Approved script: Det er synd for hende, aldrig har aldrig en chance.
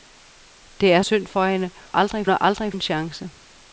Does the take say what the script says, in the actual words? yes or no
yes